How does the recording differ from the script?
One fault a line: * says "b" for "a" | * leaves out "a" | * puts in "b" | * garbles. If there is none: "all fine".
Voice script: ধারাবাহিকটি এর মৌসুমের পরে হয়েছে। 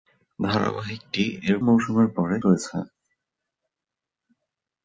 all fine